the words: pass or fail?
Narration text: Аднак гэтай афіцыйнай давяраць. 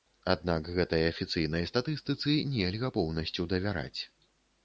fail